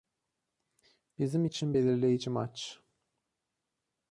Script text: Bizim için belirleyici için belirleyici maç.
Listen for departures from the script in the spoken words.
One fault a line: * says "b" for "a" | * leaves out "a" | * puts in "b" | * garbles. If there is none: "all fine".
* leaves out "için belirleyici"